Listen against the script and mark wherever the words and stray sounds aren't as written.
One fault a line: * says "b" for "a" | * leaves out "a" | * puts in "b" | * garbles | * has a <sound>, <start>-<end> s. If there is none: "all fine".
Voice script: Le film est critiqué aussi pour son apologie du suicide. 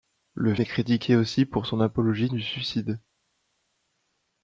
* leaves out "film"